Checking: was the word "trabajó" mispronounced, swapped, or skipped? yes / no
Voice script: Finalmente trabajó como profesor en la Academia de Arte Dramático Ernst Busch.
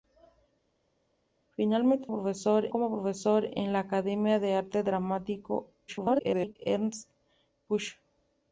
yes